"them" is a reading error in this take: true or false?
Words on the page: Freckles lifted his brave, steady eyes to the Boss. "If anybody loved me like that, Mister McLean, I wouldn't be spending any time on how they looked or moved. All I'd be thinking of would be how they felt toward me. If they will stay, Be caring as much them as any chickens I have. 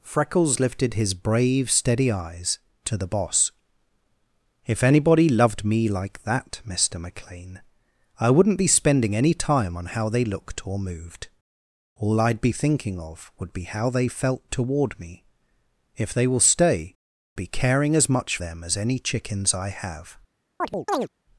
false